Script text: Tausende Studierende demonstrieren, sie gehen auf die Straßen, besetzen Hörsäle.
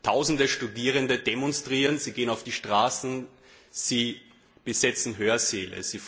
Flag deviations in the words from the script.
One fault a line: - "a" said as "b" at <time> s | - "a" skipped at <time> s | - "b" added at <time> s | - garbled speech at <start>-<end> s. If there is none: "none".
- "sie" added at 3.7 s